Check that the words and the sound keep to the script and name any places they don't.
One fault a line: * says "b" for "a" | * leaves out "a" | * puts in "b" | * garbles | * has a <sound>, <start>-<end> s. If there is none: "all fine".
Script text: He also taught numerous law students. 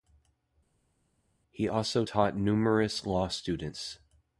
all fine